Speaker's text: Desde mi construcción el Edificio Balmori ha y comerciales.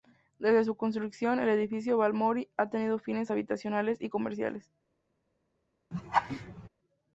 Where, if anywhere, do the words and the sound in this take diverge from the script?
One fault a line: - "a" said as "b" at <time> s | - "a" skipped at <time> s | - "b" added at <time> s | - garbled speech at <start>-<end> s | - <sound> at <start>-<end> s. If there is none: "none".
- "mi" said as "su" at 0.6 s
- "tenido fines habitacionales" added at 2.7 s
- laugh at 5.9-6.7 s